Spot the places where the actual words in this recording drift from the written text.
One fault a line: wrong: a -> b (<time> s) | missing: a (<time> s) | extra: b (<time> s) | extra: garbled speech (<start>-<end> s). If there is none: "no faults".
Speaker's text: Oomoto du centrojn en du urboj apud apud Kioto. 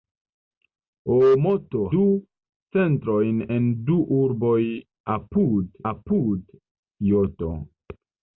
no faults